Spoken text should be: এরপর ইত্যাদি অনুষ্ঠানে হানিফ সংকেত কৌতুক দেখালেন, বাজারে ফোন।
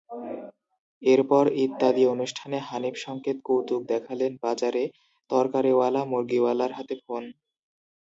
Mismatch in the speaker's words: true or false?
true